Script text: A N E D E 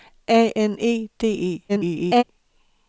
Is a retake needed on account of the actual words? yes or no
yes